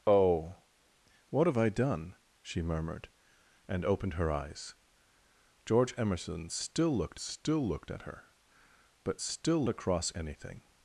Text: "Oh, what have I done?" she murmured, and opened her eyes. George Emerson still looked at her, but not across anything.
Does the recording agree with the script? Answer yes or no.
no